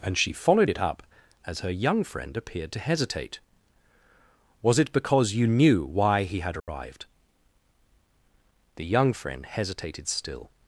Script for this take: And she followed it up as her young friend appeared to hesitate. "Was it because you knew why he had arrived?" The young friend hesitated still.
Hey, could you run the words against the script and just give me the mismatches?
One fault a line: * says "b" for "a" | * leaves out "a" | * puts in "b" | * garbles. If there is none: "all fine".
all fine